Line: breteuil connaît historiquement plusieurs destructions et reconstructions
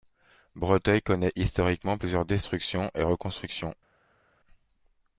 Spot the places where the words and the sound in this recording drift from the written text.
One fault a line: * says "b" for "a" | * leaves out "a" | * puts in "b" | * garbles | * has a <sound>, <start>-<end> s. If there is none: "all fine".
all fine